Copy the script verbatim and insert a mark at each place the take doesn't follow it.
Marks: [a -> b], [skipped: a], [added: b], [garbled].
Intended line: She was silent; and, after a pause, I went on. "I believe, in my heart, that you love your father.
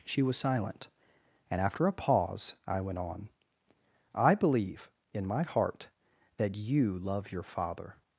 She was silent; and, after a pause, I went on. "I believe, in my heart, that you love your father.